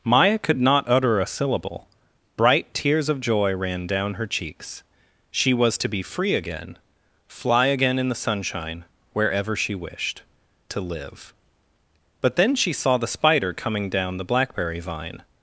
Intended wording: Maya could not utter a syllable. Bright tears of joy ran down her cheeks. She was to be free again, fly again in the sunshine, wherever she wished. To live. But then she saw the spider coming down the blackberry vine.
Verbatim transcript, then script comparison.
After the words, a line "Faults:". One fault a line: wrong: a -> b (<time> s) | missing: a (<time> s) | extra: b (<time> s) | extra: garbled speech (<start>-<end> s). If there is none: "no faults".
Maya could not utter a syllable. Bright tears of joy ran down her cheeks. She was to be free again, fly again in the sunshine, wherever she wished. To live. But then she saw the spider coming down the blackberry vine.
Faults:
no faults